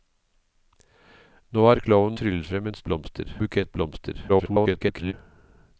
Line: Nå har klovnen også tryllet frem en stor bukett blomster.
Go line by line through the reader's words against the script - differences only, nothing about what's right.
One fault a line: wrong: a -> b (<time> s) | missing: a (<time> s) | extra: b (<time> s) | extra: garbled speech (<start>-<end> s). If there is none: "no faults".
missing: også (2.2 s)
wrong: stor -> blomster (2.8 s)
extra: garbled speech (4.3-5.1 s)